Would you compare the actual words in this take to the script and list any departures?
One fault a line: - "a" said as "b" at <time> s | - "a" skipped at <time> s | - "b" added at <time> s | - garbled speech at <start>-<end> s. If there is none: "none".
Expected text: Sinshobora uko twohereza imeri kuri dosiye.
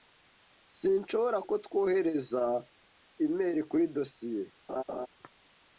none